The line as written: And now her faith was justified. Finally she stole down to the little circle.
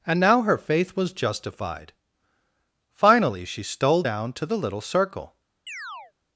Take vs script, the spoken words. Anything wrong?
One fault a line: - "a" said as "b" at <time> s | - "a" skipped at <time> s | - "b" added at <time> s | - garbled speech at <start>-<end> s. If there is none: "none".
none